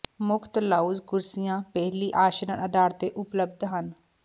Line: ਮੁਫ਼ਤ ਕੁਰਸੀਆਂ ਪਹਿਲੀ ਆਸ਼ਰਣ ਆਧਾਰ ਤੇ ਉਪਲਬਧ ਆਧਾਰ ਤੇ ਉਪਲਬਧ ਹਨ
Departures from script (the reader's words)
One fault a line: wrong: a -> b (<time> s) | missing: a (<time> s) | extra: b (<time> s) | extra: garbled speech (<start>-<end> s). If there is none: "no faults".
extra: ਲਾਉਂਜ (0.6 s)
missing: ਆਧਾਰ ਤੇ ਉਪਲਬਧ (3.6 s)